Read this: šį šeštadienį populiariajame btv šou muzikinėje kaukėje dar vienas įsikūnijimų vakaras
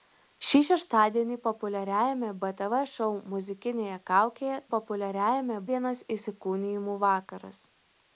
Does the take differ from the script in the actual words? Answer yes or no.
yes